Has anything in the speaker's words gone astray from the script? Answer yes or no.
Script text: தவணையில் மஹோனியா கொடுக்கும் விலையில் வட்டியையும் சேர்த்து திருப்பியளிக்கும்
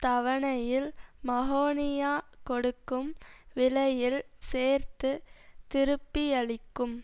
yes